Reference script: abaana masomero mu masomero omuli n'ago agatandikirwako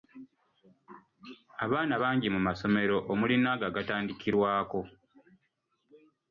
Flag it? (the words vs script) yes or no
yes